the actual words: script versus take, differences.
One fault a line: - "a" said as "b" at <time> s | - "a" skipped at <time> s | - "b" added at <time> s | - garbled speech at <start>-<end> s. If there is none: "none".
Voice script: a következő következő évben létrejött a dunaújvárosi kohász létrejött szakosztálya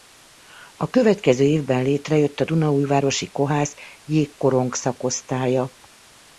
- "következő" skipped at 1.4 s
- "létrejött" said as "jégkorong" at 4.0 s